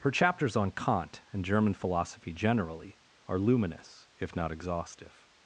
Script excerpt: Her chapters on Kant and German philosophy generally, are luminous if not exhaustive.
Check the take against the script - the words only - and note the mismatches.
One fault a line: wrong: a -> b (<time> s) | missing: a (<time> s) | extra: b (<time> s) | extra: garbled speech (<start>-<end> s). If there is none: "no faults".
no faults